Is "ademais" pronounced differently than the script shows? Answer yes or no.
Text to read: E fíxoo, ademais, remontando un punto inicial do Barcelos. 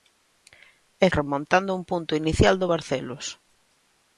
yes